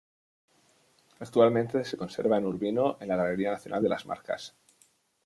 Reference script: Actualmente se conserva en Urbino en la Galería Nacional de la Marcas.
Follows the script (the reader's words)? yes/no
no